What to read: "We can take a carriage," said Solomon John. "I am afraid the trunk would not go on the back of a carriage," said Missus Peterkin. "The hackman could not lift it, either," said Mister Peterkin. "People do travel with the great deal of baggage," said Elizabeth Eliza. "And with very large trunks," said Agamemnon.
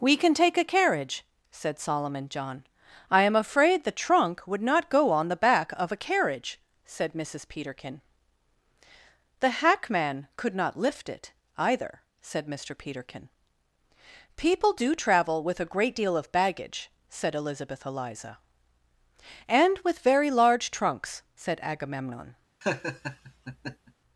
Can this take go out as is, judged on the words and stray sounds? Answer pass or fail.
fail